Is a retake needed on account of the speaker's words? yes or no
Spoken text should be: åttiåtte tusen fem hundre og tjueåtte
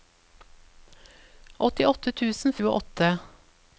yes